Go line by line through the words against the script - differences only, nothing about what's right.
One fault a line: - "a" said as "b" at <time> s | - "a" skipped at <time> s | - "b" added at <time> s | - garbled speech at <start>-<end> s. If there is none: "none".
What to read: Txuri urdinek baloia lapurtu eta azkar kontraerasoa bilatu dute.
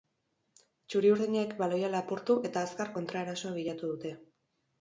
none